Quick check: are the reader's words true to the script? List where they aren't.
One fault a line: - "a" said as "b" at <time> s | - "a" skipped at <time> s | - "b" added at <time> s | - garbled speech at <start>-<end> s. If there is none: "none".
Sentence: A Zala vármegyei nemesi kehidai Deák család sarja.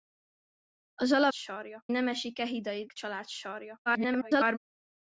- "vármegyei" said as "sarja" at 1.3 s
- "Deák" skipped at 2.9 s
- garbled speech at 3.9-4.6 s